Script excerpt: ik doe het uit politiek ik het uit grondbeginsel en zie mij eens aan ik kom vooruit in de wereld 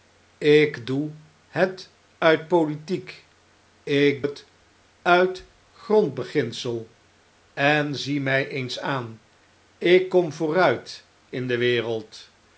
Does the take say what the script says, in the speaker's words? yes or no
yes